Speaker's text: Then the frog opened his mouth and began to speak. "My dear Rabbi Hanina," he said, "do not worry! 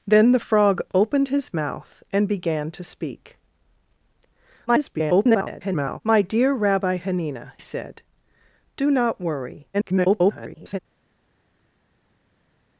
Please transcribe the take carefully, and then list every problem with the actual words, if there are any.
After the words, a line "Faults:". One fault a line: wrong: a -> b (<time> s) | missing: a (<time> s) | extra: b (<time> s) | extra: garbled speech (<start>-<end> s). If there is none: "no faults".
Then the frog opened his mouth and began to speak. [garbled] "My dear Rabbi Hanina," said, "do not worry! [garbled]
Faults:
extra: garbled speech (4.7-6.0 s)
missing: he (7.5 s)
extra: garbled speech (9.7-10.8 s)